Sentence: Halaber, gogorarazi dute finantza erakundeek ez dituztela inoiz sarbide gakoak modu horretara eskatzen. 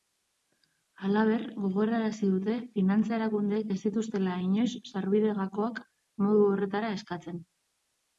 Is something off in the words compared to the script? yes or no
no